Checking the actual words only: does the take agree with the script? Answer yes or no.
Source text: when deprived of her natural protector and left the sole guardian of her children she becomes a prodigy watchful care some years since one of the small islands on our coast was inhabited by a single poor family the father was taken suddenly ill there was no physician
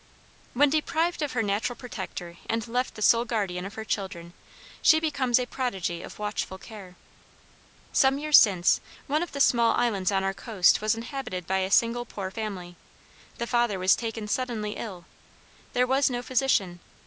no